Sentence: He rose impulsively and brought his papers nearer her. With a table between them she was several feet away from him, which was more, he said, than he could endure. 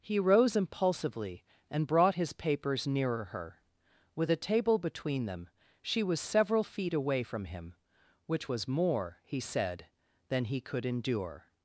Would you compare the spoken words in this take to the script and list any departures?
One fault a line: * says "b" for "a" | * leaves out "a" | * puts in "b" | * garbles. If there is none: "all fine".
all fine